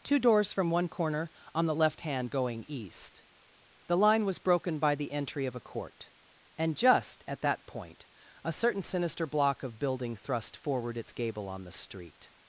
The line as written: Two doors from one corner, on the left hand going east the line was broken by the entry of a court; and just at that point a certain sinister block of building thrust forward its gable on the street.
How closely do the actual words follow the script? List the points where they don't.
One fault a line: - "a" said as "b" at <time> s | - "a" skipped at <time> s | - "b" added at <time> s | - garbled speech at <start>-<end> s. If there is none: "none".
none